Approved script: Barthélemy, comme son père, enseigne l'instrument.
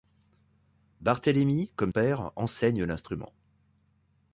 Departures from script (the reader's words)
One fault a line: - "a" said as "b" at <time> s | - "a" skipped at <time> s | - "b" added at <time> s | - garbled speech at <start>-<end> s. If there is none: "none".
- "son" skipped at 1.9 s